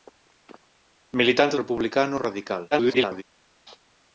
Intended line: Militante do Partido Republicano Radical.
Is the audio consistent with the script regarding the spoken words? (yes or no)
no